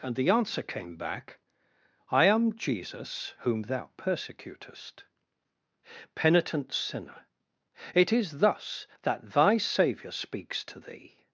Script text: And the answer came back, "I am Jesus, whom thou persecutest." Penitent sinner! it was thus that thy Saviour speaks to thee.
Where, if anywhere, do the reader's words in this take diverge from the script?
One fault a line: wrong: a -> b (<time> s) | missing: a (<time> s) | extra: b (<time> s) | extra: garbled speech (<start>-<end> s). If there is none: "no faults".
wrong: was -> is (8.1 s)